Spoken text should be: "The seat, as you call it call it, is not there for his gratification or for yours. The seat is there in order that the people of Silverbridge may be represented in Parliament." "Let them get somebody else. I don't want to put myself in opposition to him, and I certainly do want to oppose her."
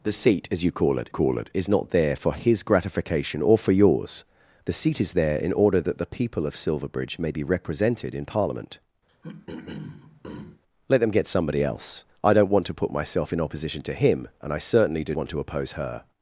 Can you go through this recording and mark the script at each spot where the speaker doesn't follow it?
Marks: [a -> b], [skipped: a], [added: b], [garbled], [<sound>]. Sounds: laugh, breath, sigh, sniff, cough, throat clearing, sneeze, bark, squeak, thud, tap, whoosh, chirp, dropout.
"The seat, as you call it call it, is not there for his gratification or for yours. The seat is there in order that the people of Silverbridge may be represented in Parliament." [throat clearing] "Let them get somebody else. I don't want to put myself in opposition to him, and I certainly do want to oppose her."